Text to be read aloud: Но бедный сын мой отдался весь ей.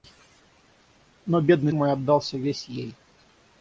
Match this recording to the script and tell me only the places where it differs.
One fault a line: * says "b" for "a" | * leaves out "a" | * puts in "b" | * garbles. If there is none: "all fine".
* leaves out "сын"